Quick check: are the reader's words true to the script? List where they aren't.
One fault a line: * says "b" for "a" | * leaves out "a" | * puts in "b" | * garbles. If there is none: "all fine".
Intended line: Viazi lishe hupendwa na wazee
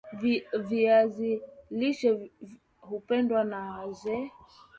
all fine